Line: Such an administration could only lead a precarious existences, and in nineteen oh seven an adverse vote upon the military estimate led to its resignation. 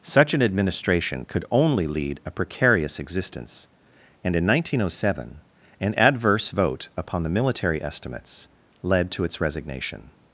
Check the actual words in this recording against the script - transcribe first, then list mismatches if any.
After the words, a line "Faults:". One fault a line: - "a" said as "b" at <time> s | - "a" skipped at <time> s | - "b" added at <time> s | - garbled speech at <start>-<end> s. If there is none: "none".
Such an administration could only lead a precarious existence, and in nineteen oh seven an adverse vote upon the military estimates led to its resignation.
Faults:
- "existences" said as "existence" at 3.0 s
- "estimate" said as "estimates" at 7.8 s